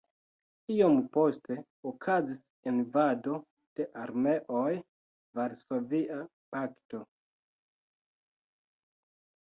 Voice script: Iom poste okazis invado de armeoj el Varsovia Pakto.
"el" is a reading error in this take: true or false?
true